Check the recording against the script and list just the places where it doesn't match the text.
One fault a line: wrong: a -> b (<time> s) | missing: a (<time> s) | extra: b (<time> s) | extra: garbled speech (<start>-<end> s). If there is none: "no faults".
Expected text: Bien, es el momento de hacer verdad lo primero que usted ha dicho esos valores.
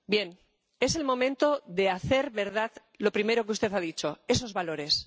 no faults